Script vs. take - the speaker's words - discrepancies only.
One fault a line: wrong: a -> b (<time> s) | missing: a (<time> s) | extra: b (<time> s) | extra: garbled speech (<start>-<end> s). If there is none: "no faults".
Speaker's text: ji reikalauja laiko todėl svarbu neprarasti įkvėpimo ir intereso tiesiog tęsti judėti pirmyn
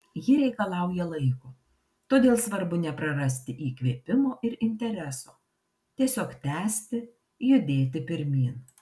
no faults